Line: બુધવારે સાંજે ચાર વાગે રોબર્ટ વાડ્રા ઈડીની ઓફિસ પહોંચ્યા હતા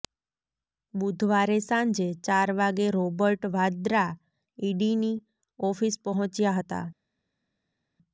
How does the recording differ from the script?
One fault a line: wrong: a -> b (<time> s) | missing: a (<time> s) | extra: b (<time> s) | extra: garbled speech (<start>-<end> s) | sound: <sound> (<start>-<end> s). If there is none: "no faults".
no faults